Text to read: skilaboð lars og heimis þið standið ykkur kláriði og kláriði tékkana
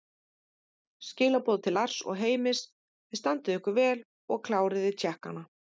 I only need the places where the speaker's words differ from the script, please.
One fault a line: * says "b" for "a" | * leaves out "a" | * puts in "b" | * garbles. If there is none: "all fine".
* puts in "til"
* says "vel" for "kláriði"